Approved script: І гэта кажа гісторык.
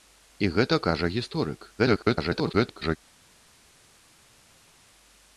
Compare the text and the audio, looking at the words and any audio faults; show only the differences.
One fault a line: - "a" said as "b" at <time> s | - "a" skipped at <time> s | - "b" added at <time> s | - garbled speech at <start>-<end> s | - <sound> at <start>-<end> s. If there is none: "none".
- garbled speech at 1.8-3.0 s